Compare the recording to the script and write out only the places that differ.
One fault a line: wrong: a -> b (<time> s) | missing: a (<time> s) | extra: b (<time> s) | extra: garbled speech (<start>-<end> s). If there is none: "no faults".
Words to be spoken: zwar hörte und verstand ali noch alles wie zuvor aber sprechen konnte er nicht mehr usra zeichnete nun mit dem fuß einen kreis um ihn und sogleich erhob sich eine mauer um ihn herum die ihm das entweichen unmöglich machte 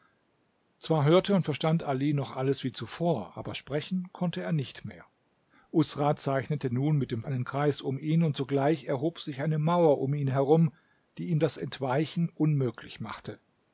missing: fuß (7.2 s)